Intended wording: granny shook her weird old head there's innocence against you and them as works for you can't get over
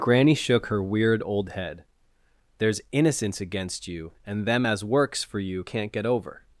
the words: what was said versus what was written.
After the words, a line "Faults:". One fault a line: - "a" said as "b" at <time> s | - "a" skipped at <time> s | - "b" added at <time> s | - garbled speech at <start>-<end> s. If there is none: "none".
granny shook her weird old head there's innocence against you and them as works for you can't get over
Faults:
none